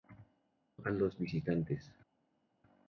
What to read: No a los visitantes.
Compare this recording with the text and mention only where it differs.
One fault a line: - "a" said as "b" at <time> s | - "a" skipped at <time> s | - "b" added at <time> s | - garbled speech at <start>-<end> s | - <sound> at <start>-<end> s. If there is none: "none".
none